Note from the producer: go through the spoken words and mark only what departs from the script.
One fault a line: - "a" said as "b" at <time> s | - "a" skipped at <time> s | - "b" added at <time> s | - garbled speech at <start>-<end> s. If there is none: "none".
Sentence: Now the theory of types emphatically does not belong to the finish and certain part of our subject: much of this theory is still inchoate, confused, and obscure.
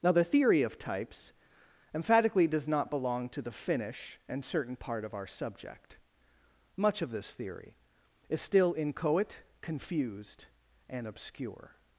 none